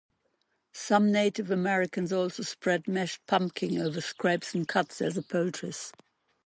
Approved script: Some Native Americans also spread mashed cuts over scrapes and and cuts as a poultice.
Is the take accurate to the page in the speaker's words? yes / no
no